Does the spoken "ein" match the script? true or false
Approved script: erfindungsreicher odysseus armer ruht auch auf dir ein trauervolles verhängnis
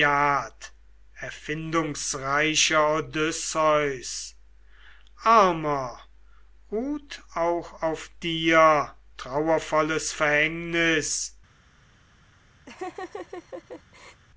false